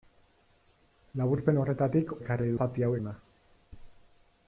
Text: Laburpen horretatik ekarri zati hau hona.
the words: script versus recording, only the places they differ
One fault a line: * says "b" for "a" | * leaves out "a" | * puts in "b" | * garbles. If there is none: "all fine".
all fine